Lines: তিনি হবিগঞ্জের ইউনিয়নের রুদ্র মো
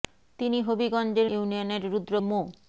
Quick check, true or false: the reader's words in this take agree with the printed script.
true